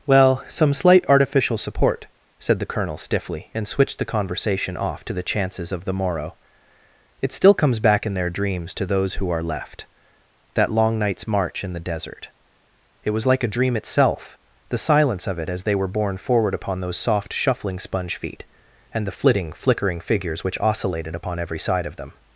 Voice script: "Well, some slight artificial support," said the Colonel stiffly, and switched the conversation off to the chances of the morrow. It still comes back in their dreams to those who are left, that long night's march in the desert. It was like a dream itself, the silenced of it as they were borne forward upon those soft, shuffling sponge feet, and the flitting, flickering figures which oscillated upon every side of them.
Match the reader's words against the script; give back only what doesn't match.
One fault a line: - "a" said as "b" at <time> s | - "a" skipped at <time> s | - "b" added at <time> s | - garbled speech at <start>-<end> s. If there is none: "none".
- "silenced" said as "silence" at 14.8 s